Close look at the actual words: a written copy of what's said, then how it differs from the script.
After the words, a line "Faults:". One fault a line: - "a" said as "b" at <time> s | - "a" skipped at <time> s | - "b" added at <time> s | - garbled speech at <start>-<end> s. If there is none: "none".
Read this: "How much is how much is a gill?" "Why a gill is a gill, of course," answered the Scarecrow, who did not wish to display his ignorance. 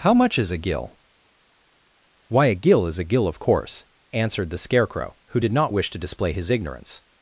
"How much is a gill?" "Why a gill is a gill, of course," answered the Scarecrow, who did not wish to display his ignorance.
Faults:
- "how much is" skipped at 0.5 s